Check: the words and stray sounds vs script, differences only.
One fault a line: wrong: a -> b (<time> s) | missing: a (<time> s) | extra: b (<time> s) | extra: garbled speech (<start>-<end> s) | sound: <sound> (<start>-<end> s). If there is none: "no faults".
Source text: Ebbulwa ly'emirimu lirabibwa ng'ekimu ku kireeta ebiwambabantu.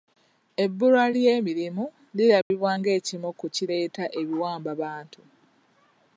sound: dropout (2.4-2.5 s)